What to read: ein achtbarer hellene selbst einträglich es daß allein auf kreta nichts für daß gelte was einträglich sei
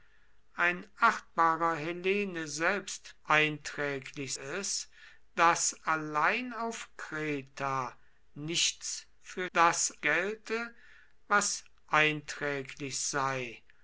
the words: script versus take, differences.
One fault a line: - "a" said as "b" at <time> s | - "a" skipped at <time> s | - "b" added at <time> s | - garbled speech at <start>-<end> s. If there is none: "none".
none